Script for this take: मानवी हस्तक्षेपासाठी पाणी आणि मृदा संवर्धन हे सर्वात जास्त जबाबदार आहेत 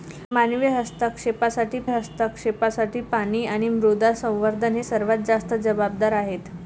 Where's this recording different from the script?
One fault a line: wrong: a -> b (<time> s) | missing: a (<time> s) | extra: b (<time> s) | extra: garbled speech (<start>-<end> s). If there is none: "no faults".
extra: हस्तक्षेपासाठी (1.8 s)